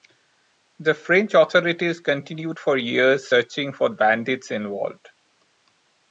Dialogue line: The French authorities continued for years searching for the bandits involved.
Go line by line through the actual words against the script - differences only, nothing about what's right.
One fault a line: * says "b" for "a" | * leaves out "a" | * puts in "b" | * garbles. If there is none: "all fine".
* leaves out "the"